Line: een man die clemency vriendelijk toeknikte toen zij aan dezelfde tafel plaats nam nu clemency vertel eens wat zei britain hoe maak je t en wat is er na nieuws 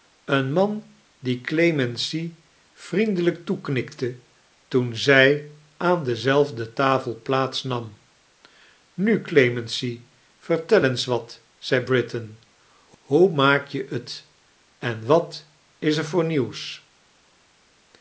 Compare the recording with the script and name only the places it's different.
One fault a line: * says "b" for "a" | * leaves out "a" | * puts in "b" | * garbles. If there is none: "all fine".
* says "voor" for "na"